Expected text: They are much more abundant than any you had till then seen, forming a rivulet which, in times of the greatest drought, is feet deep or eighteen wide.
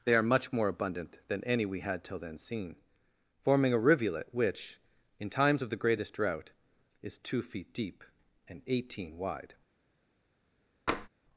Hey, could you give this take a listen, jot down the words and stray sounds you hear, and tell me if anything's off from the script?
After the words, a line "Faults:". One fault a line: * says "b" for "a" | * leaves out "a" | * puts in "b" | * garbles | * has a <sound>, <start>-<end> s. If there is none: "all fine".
They are much more abundant than any we had till then seen, forming a rivulet which, in times of the greatest drought, is two feet deep and eighteen wide.
Faults:
* says "we" for "you"
* puts in "two"
* says "and" for "or"
* has a tap, 10.9-11.1 s